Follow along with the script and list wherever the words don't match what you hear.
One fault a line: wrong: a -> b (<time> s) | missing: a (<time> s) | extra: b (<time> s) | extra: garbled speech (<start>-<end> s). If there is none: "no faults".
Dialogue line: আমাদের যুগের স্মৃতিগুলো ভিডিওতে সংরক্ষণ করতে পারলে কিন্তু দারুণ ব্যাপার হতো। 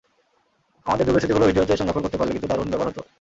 no faults